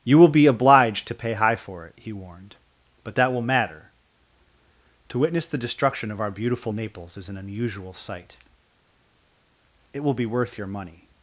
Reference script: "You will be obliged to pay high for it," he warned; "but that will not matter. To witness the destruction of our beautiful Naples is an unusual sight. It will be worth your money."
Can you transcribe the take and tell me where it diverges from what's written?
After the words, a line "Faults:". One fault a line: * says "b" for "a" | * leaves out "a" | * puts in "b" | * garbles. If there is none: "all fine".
"You will be obliged to pay high for it," he warned; "but that will matter. To witness the destruction of our beautiful Naples is an unusual sight. It will be worth your money."
Faults:
* leaves out "not"